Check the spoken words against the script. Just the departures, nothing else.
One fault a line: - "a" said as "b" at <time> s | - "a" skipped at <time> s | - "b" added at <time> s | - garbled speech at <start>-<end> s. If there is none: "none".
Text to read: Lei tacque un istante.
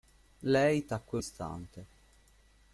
- "un" skipped at 1.2 s